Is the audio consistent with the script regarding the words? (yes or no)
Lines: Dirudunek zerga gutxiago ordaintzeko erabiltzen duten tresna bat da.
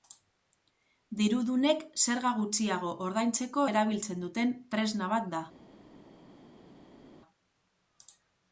yes